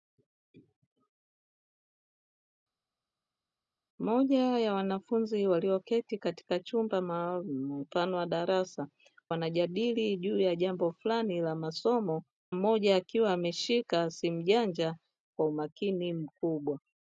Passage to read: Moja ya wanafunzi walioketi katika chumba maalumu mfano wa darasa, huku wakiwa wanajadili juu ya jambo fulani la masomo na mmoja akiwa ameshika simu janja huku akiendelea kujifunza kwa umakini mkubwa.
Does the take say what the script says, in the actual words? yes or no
no